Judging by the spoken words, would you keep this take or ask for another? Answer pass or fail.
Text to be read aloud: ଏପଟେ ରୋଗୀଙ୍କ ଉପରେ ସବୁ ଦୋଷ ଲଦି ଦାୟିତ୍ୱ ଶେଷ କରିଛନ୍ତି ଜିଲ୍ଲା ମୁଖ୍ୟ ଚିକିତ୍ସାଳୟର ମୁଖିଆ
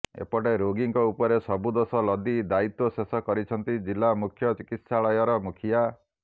pass